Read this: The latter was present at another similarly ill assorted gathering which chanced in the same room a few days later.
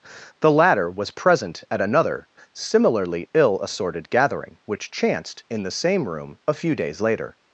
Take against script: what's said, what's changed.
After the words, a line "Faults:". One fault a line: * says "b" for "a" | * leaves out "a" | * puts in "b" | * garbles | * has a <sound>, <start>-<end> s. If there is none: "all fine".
The latter was present at another similarly ill assorted gathering which chanced in the same room a few days later.
Faults:
all fine